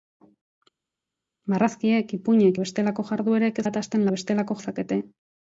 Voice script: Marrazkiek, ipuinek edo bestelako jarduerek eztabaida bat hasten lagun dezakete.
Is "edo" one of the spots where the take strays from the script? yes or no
yes